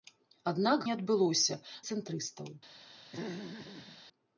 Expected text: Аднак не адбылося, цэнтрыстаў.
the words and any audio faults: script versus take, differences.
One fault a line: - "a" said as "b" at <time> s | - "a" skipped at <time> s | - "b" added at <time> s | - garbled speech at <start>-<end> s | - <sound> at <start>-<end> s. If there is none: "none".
- throat clearing at 3.1-4.0 s